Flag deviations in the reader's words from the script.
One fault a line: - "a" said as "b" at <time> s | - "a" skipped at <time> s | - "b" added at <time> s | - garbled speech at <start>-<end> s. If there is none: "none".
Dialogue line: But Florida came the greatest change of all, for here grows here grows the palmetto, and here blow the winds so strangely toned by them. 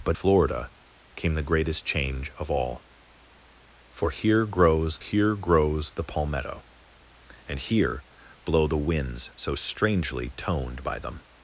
none